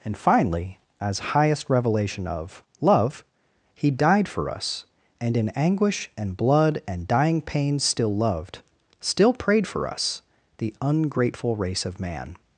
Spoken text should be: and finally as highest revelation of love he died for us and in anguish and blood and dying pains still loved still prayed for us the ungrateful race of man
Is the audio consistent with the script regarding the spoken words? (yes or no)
yes